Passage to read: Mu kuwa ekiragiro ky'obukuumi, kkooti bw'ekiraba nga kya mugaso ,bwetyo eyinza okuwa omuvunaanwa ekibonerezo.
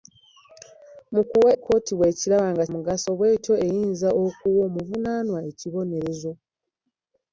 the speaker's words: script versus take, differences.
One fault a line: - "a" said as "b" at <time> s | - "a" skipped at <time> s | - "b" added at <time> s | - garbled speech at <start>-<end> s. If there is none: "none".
- "ekiragiro ky'obukuumi" skipped at 1.5 s
- "kya" skipped at 2.6 s